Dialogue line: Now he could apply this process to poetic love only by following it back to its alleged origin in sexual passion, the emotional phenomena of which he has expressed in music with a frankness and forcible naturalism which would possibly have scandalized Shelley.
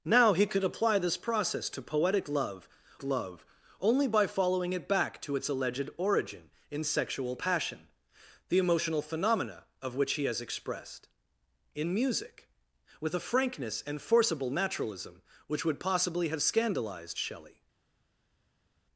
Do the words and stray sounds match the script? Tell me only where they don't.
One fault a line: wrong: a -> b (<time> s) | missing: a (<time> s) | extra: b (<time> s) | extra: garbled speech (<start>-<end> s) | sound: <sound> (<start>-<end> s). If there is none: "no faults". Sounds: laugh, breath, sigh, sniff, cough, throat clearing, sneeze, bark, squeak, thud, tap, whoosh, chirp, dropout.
extra: love (3.0 s)